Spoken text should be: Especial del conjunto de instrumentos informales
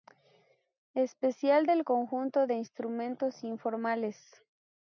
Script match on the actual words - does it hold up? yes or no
yes